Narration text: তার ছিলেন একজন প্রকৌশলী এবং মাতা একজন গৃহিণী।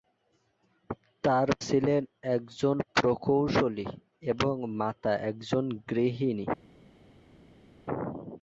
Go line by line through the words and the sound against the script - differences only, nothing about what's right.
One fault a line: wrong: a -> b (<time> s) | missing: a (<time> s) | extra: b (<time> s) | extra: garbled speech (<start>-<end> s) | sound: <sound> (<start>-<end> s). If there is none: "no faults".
no faults